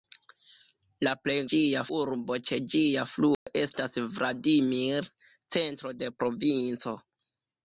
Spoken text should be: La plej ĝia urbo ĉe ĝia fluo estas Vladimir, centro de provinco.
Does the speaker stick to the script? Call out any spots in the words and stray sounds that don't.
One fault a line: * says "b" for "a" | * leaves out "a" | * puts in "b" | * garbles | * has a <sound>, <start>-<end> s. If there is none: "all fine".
* has a dropout, 3.3-3.5 s